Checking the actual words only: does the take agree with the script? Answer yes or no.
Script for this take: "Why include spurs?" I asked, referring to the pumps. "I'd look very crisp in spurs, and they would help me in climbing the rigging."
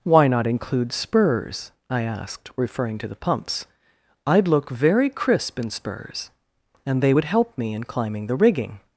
no